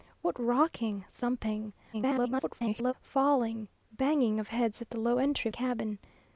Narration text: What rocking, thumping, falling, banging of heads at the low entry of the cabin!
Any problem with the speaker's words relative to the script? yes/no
yes